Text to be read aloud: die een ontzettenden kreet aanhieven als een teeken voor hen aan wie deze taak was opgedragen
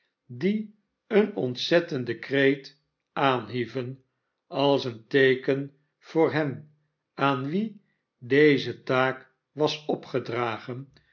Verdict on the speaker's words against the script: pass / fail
pass